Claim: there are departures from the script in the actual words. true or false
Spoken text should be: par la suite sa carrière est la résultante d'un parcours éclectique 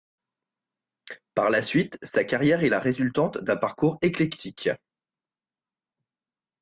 false